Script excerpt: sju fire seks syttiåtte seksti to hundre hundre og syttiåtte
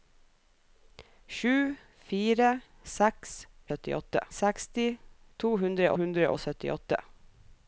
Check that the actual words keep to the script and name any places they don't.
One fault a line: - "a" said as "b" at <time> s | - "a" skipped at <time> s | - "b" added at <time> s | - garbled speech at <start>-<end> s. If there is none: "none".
none